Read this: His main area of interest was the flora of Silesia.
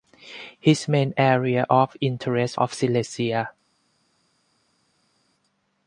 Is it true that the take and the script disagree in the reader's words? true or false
true